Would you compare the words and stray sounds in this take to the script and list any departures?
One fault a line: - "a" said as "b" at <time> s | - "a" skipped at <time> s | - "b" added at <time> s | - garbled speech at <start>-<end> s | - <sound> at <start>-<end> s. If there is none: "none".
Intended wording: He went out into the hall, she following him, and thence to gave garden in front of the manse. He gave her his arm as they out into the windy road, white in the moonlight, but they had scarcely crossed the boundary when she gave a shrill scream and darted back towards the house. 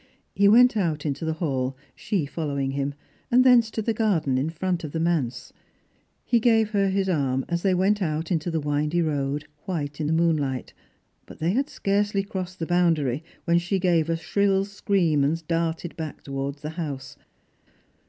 - "gave" said as "the" at 3.8 s
- "went" added at 7.7 s